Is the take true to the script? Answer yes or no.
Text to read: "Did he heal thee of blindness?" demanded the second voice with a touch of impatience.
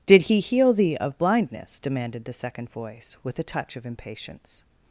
yes